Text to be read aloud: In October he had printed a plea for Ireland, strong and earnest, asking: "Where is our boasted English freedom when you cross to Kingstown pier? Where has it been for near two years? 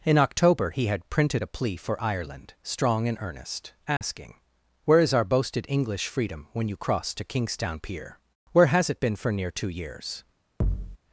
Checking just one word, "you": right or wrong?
right